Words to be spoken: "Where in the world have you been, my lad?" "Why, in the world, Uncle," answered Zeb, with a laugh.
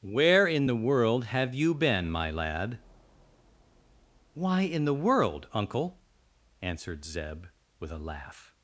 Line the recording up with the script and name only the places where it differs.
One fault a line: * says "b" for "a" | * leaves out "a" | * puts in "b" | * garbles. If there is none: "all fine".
all fine